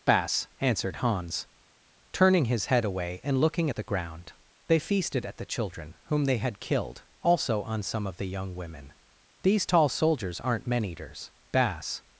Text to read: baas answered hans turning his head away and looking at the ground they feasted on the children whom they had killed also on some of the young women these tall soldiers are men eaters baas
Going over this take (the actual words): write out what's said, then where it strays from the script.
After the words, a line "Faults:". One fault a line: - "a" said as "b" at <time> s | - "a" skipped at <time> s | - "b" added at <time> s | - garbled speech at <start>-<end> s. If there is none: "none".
baas answered hans turning his head away and looking at the ground they feasted at the children whom they had killed also on some of the young women these tall soldiers aren't men eaters baas
Faults:
- "on" said as "at" at 5.2 s
- "are" said as "aren't" at 10.4 s